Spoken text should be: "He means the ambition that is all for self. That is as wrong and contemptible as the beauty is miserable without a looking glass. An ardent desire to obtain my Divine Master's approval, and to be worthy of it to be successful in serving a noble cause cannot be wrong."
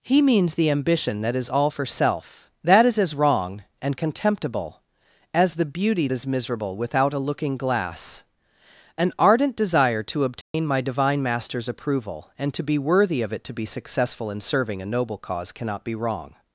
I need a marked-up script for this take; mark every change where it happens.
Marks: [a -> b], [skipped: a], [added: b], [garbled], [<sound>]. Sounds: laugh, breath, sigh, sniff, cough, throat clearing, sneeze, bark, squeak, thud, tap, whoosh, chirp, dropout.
"He means the ambition that is all for self. That is as wrong and contemptible as the beauty is miserable without a looking glass. An ardent desire to obtain [dropout] my Divine Master's approval, and to be worthy of it to be successful in serving a noble cause cannot be wrong."